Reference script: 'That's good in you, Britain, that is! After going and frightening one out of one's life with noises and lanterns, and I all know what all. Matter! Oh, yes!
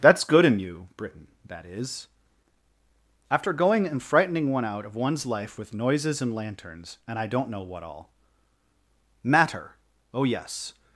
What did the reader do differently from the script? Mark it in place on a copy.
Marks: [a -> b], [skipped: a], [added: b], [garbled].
'That's good in you, Britain, that is! After going and frightening one out of one's life with noises and lanterns, and I [all -> don't] know what all. Matter! Oh, yes!